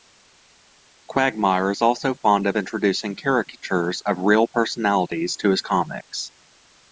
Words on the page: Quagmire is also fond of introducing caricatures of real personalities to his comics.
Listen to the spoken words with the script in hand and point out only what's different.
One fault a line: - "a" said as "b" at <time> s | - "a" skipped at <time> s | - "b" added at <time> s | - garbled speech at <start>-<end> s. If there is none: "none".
none